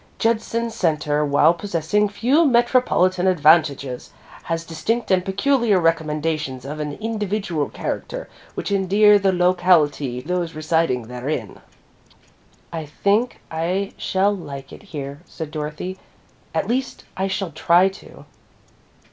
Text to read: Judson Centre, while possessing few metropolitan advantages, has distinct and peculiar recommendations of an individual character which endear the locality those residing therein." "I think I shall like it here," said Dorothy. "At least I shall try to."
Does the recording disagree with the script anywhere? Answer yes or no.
no